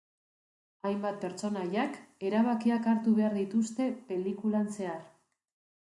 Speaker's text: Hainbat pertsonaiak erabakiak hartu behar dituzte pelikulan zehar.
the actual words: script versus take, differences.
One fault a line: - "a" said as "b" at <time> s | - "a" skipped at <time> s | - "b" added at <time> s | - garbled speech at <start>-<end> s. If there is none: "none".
none